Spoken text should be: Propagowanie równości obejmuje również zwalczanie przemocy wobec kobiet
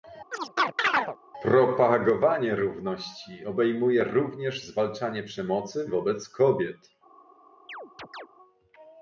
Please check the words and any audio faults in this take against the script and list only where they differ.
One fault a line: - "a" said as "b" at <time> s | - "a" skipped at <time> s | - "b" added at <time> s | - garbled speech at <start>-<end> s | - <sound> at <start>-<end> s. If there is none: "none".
- chirp at 0.3-1.2 s
- chirp at 7.7-8.3 s